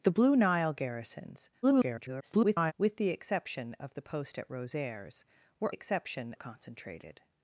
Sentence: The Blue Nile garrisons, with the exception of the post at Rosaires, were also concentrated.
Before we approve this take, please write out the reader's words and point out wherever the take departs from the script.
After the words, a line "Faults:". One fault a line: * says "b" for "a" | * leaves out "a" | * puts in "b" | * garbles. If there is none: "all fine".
The Blue Nile garrisons, [garbled] with the exception of the post at Rosaires, were exception concentrated.
Faults:
* garbles
* says "exception" for "also"